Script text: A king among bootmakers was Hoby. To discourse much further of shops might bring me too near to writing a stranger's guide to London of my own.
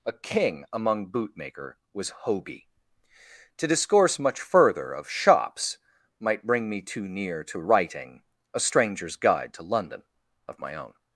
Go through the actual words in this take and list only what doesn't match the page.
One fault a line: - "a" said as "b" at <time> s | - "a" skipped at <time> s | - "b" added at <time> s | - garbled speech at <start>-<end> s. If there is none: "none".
- "bootmakers" said as "bootmaker" at 1.1 s